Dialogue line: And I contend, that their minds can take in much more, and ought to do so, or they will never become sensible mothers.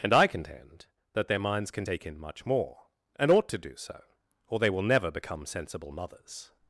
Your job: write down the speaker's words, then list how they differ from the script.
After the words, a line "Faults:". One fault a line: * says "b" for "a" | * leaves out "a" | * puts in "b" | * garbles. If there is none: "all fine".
And I contend, that their minds can take in much more, and ought to do so, or they will never become sensible mothers.
Faults:
all fine